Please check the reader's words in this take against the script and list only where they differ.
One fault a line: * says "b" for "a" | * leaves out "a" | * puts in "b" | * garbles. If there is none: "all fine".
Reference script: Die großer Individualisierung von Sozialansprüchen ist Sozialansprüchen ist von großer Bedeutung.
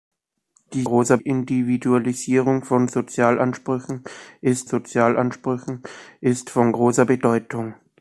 all fine